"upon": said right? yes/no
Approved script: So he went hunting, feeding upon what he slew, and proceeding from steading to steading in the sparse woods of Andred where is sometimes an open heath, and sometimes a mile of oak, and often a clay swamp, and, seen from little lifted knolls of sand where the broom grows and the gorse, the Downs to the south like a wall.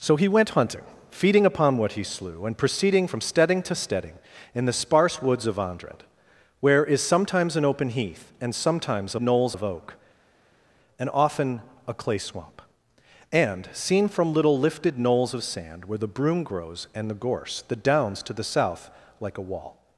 yes